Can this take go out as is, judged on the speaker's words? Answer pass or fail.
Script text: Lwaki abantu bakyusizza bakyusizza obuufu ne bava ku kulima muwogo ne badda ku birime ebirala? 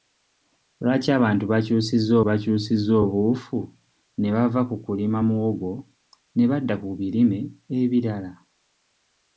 pass